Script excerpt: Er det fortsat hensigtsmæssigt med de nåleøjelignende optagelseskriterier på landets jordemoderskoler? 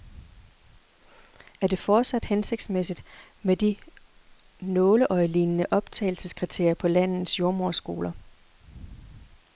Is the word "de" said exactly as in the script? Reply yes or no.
yes